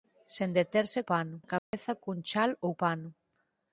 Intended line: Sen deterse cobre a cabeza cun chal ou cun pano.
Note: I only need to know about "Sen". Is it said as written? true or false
true